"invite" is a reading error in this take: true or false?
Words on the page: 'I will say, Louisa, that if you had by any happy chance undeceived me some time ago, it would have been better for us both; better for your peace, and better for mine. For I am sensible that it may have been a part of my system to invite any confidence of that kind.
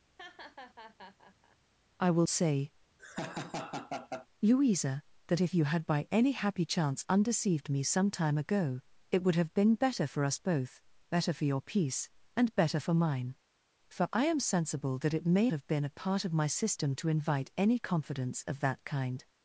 false